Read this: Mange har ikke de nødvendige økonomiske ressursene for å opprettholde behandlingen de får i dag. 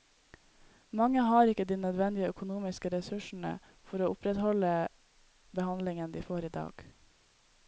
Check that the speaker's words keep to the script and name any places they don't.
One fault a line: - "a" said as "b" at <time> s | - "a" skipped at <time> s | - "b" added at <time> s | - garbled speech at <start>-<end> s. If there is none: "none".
none